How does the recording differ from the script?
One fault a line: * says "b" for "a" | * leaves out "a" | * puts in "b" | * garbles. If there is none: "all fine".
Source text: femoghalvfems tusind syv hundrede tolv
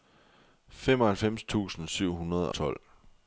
all fine